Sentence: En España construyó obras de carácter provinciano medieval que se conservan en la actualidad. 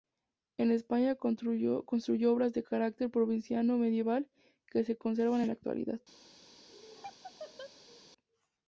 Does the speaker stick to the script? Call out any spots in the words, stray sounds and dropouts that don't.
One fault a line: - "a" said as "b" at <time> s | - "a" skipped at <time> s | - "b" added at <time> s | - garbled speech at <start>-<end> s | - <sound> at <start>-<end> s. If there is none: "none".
- laugh at 6.7-8.1 s